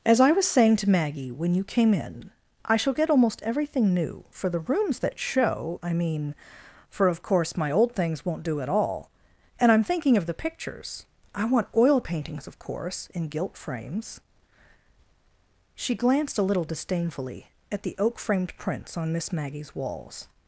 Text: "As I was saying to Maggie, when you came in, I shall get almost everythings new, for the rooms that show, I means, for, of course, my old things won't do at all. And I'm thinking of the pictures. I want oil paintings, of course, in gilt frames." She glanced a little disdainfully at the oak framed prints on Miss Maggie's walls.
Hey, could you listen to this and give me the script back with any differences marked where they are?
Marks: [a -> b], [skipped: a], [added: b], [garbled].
"As I was saying to Maggie, when you came in, I shall get almost [everythings -> everything] new, for the rooms that show, I [means, -> mean] for, of course, my old things won't do at all. And I'm thinking of the pictures. I want oil paintings, of course, in gilt frames." She glanced a little disdainfully at the oak framed prints on Miss Maggie's walls.